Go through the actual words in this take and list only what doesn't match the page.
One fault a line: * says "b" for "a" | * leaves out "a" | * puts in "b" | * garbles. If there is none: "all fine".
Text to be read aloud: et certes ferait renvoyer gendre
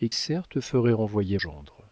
all fine